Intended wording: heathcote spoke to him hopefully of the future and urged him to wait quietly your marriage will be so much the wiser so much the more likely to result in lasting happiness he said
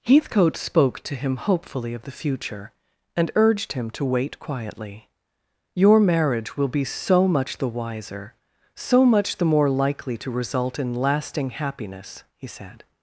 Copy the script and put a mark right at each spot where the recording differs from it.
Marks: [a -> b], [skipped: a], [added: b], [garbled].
heathcote spoke to him hopefully of the future and urged him to wait quietly your marriage will be so much the wiser so much the more likely to result in lasting happiness he said